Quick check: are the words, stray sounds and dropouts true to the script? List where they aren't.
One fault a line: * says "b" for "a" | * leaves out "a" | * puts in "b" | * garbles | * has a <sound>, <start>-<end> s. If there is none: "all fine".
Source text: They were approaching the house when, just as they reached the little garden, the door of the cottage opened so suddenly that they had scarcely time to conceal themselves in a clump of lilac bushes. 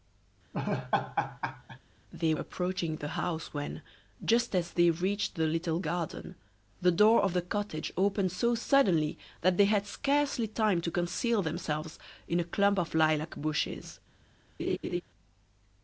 * has a laugh, 0.5-1.8 s
* leaves out "were"
* has a laugh, 14.6-15.0 s